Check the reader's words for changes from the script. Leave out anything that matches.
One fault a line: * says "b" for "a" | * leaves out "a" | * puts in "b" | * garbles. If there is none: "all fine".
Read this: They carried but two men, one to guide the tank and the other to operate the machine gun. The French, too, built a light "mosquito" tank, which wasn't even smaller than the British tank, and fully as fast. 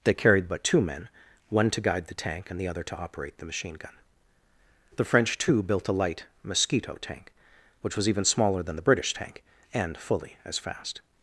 * says "was" for "wasn't"